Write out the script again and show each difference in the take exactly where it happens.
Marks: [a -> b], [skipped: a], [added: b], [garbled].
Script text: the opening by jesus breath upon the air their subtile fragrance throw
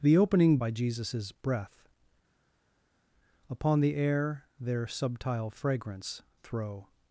the opening by jesus breath upon the air their subtile fragrance throw